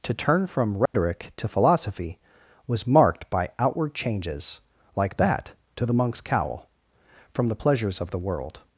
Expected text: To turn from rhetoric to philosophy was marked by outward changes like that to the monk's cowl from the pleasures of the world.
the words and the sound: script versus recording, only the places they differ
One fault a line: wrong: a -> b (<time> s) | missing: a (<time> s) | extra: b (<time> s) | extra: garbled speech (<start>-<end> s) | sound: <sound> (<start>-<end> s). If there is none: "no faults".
sound: dropout (0.9-0.9 s)